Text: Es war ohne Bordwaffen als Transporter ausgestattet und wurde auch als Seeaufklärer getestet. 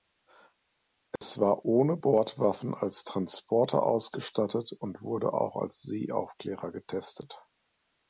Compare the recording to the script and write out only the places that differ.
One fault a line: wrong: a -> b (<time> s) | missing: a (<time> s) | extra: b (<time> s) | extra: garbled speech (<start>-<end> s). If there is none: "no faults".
no faults